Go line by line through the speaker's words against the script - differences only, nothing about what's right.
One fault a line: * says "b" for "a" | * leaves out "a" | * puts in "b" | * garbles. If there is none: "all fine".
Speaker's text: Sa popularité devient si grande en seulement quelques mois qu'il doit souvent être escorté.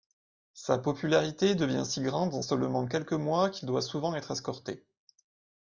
all fine